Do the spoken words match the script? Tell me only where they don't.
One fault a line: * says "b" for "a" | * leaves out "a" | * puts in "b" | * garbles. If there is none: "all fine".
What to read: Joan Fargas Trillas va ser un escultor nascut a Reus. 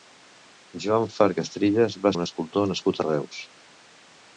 * leaves out "ser"